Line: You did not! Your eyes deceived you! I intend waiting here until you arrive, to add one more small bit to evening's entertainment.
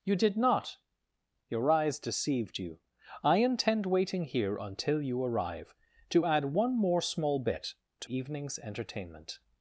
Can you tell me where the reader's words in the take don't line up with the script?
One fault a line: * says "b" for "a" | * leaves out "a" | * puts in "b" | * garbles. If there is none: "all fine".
all fine